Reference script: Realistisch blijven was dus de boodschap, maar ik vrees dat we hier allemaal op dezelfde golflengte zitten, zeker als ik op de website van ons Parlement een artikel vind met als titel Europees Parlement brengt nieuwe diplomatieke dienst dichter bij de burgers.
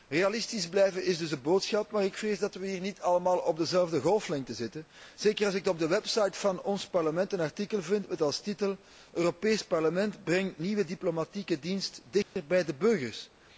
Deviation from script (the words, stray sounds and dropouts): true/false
true